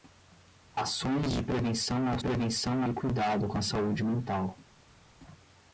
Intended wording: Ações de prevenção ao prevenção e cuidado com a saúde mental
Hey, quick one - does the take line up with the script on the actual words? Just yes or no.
yes